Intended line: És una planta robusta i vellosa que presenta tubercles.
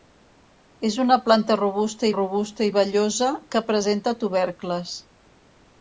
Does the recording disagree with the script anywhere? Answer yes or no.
yes